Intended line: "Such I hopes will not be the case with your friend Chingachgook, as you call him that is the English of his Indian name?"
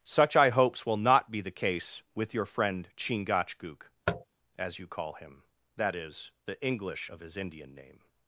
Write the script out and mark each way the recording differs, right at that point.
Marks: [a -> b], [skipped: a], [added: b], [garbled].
"Such I hopes will not be the case with your friend Chingachgook, as you call him that is the English of his Indian name?"